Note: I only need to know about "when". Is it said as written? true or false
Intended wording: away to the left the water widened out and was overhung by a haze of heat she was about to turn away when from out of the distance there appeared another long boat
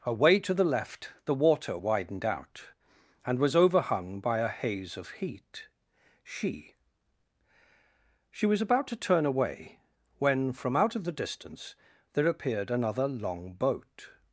true